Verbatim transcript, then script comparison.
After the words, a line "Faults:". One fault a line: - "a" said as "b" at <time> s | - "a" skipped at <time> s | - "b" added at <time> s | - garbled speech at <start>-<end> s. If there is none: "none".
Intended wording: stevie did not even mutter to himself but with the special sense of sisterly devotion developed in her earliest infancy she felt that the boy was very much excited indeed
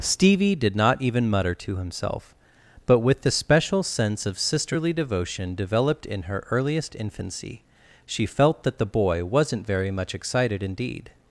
stevie did not even mutter to himself but with the special sense of sisterly devotion developed in her earliest infancy she felt that the boy wasn't very much excited indeed
Faults:
- "was" said as "wasn't" at 9.2 s